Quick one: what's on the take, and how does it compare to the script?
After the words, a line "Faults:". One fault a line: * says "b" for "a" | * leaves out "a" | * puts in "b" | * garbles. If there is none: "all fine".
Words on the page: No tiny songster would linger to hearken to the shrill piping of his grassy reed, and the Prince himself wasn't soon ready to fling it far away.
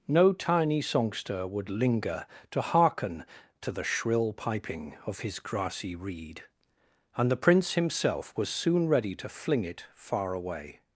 No tiny songster would linger to hearken to the shrill piping of his grassy reed, and the Prince himself was soon ready to fling it far away.
Faults:
* says "was" for "wasn't"